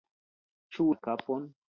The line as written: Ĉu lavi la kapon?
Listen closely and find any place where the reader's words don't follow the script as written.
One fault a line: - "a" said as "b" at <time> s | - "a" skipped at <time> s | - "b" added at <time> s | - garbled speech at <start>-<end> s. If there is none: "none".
- "lavi" skipped at 0.9 s